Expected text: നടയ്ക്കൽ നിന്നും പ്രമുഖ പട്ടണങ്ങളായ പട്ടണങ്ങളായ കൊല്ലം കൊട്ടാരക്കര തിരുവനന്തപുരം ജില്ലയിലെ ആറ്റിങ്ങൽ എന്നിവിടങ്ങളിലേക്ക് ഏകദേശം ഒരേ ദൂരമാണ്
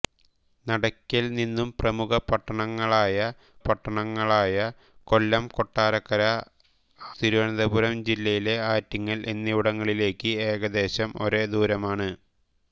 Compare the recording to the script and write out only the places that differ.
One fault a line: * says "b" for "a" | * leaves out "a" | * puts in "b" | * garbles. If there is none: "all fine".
all fine